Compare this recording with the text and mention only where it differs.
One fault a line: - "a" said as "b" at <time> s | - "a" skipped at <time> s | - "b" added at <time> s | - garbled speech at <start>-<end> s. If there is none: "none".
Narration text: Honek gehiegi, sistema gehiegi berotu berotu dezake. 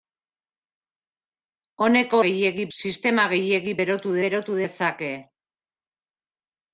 none